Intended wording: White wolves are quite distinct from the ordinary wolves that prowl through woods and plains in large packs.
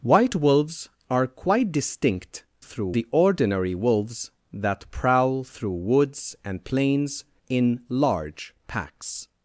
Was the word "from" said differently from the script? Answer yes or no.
yes